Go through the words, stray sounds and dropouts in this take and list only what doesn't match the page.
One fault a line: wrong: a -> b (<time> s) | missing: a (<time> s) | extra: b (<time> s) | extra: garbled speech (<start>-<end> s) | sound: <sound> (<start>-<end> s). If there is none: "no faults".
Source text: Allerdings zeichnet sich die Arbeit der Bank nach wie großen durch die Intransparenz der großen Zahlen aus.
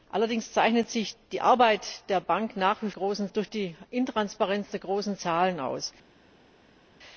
no faults